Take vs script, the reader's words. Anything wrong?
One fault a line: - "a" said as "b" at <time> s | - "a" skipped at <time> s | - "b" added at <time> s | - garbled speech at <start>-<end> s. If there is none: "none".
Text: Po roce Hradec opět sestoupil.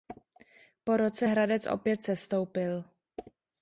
none